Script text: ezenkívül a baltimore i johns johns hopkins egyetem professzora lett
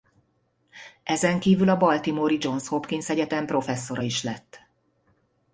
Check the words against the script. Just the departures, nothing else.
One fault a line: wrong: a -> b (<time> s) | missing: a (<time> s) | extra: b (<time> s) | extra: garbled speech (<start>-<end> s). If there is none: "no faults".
missing: johns (2.7 s)
extra: is (4.0 s)